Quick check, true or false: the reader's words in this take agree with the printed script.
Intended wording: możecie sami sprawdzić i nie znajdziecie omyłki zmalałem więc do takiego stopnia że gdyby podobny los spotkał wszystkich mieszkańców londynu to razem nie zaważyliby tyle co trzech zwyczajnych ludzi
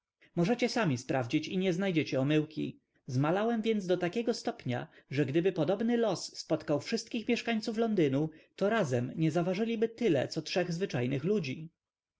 true